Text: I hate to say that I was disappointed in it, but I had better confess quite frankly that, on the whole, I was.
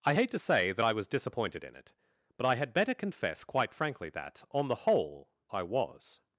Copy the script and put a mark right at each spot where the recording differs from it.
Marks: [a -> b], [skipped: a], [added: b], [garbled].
I hate to say that I was disappointed in it, but I had better confess quite frankly that, on the whole, I was.